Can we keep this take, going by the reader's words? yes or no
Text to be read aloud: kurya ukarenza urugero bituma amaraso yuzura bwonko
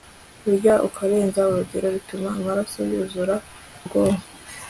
yes